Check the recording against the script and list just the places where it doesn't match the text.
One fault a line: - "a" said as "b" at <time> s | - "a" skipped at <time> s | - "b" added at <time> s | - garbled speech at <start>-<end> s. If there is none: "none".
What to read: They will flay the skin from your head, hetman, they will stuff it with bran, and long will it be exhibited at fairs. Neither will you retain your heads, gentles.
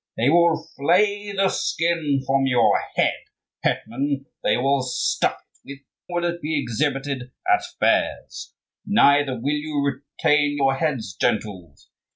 - "bran and long" skipped at 5.8 s